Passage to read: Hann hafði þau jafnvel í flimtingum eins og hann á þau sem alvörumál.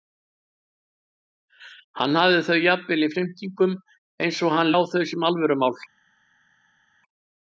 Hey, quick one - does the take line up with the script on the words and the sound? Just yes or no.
yes